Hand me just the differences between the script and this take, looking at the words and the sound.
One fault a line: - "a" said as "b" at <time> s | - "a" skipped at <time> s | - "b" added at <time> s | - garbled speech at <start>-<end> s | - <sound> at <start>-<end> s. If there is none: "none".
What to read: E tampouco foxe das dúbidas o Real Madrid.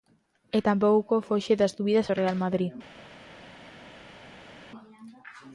none